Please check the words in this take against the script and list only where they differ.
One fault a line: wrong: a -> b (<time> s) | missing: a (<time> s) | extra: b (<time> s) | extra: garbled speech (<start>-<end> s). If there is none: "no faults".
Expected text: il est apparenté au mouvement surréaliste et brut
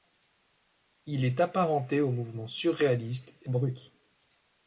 no faults